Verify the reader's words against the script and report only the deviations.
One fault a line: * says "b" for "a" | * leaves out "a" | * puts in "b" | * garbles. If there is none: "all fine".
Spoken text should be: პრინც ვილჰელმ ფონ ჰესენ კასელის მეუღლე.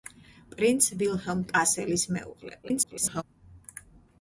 * leaves out "ფონ ჰესენ"
* garbles